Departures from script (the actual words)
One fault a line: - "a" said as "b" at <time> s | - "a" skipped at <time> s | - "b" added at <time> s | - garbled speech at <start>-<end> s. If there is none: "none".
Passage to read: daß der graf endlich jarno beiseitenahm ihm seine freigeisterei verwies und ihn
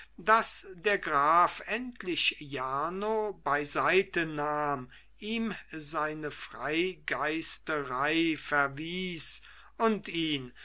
none